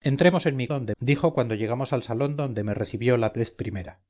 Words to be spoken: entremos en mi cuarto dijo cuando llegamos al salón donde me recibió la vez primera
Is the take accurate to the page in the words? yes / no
no